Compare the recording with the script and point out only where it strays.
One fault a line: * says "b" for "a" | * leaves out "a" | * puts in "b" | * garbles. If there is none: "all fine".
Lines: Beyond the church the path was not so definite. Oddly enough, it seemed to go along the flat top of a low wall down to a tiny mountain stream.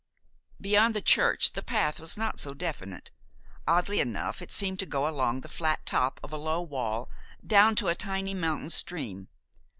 all fine